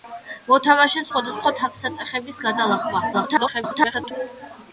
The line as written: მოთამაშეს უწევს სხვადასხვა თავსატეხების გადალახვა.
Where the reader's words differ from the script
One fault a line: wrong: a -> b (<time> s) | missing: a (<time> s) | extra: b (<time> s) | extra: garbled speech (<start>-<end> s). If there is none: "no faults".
missing: უწევს (1.1 s)
extra: garbled speech (3.1-4.1 s)